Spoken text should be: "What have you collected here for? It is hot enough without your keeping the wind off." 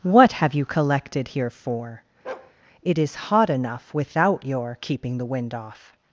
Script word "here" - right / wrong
right